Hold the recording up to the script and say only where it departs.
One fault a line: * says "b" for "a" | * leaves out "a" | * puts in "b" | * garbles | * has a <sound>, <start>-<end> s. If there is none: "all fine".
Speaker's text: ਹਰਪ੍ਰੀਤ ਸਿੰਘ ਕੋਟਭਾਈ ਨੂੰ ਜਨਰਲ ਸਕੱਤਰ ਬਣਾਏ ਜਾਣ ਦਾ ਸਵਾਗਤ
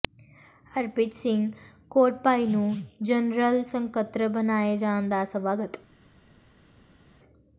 all fine